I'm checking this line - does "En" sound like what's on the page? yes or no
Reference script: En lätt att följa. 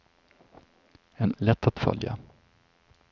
yes